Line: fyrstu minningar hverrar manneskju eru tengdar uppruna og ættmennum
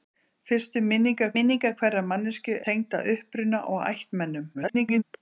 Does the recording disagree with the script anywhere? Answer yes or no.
yes